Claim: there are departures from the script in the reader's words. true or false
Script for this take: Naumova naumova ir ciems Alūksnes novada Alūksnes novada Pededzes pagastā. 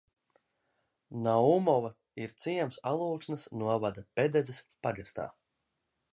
true